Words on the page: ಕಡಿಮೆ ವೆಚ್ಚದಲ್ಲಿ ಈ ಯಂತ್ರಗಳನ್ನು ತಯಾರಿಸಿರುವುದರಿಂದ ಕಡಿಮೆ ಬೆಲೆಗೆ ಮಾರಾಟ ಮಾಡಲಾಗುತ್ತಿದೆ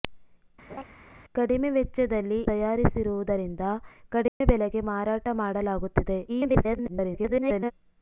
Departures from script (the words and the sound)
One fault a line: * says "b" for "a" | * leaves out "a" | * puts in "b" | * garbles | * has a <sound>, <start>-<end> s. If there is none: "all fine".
* has a laugh, 0.7-0.8 s
* leaves out "ಈ ಯಂತ್ರಗಳನ್ನು"
* has a dropout, 4.3-4.4 s
* garbles